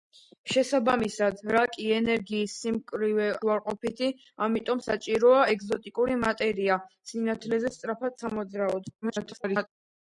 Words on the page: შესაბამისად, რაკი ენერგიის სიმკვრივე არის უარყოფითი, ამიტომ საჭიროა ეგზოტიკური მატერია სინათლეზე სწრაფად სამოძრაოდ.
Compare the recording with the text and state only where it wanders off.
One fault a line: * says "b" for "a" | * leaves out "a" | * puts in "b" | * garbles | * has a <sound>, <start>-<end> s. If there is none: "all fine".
* leaves out "არის"
* garbles